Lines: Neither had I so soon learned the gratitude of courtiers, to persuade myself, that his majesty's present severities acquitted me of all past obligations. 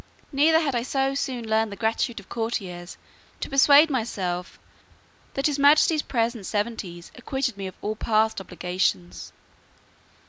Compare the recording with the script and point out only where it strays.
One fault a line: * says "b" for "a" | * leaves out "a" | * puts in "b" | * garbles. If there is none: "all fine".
all fine